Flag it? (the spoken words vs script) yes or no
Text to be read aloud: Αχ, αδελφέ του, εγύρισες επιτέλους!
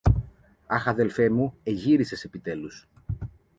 yes